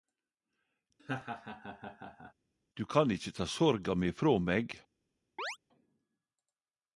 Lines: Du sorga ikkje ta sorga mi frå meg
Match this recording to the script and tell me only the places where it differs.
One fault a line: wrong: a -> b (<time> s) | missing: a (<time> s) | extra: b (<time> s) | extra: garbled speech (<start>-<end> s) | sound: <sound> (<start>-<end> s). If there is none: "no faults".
sound: laugh (1.0-2.3 s)
wrong: sorga -> kan (2.9 s)
sound: chirp (5.4-5.6 s)